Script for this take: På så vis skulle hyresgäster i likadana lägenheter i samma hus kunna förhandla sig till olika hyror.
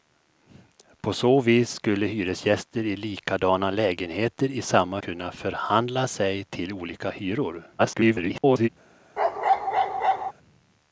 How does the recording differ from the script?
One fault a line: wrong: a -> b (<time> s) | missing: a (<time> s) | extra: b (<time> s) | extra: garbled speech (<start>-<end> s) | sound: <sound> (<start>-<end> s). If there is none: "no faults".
missing: hus (5.0 s)
extra: garbled speech (7.8-8.7 s)
sound: bark (9.2-10.3 s)